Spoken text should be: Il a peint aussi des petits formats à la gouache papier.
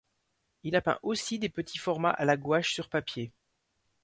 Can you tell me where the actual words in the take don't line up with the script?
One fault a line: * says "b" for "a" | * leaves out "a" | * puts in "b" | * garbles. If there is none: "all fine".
* puts in "sur"